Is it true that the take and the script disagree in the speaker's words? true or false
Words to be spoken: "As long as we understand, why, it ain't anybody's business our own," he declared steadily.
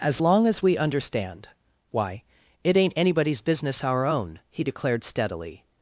false